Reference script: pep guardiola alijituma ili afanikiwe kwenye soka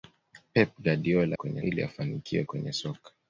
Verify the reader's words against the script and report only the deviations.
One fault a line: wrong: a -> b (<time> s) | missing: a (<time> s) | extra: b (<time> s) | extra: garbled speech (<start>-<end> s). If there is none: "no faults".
wrong: alijituma -> kwenye (1.3 s)